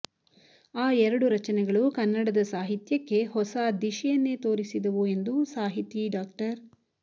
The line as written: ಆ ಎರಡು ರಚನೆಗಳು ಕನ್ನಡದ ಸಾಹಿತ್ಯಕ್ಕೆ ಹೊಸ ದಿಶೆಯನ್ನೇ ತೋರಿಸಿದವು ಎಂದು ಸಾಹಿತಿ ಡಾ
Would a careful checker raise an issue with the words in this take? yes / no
no